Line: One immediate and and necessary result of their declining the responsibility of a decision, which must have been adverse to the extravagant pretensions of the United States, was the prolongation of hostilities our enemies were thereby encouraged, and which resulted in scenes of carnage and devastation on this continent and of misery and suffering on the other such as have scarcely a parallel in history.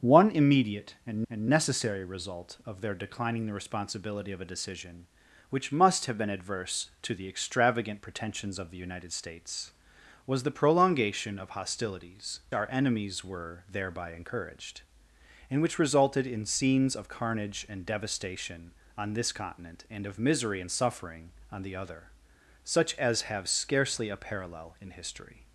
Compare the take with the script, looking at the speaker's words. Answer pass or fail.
pass